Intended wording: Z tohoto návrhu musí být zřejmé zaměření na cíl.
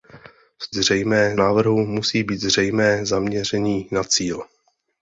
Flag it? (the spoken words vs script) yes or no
yes